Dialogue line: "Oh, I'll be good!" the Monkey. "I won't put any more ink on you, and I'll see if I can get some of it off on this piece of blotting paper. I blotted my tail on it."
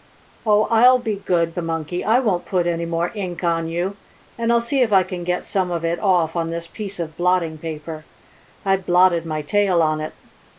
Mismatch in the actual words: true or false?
false